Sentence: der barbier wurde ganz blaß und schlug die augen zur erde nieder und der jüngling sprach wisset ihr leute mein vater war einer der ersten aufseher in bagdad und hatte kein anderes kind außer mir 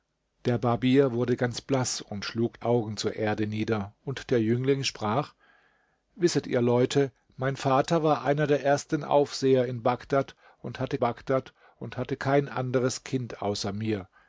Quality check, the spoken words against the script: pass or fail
fail